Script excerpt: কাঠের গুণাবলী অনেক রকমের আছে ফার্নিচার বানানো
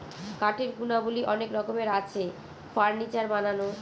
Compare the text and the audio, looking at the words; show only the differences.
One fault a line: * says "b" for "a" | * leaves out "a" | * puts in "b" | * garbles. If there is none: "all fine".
all fine